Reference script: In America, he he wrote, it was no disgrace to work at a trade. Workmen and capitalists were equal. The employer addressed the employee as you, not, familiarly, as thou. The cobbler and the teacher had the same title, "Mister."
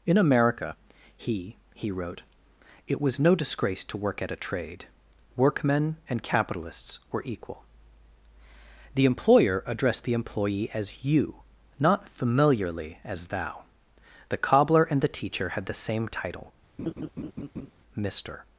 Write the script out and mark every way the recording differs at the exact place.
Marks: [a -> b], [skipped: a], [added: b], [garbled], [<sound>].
In America, he he wrote, it was no disgrace to work at a trade. Workmen and capitalists were equal. The employer addressed the employee as you, not, familiarly, as thou. The cobbler and the teacher had the same title, [laugh] "Mister."